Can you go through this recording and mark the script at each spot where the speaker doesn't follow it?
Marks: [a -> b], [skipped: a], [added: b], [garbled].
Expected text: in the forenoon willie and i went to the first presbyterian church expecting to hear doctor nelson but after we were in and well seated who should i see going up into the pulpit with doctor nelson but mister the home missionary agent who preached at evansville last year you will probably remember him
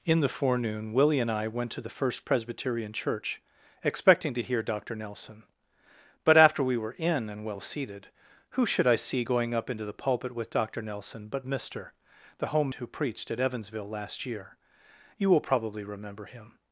in the forenoon willie and i went to the first presbyterian church expecting to hear doctor nelson but after we were in and well seated who should i see going up into the pulpit with doctor nelson but mister the home [skipped: missionary agent] who preached at evansville last year you will probably remember him